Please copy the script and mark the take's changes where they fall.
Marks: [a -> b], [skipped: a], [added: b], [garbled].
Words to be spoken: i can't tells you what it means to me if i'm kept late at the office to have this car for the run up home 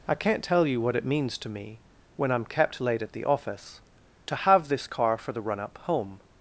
i can't [tells -> tell] you what it means to me [if -> when] i'm kept late at the office to have this car for the run up home